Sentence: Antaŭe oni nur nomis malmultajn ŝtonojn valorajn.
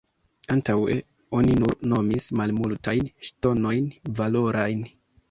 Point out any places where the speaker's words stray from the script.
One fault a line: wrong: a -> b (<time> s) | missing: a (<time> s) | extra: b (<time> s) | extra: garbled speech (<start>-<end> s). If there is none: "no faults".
no faults